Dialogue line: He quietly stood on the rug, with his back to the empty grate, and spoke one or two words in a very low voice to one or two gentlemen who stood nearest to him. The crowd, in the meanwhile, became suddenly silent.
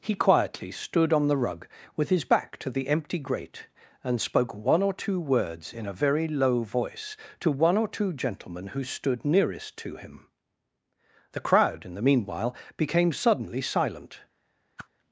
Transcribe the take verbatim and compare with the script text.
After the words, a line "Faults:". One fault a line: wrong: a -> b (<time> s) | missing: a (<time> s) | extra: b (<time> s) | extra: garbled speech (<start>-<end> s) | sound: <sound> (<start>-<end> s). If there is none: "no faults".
He quietly stood on the rug, with his back to the empty grate, and spoke one or two words in a very low voice to one or two gentlemen who stood nearest to him. The crowd, in the meanwhile, became suddenly silent.
Faults:
sound: whoosh (14.8-14.9 s)